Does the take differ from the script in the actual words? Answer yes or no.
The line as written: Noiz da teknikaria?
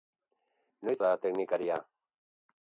no